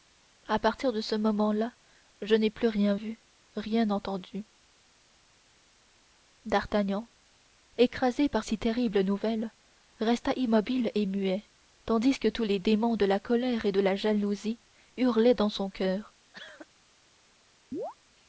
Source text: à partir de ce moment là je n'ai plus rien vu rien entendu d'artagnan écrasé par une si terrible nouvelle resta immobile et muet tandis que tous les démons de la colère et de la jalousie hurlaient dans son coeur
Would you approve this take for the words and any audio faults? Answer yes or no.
no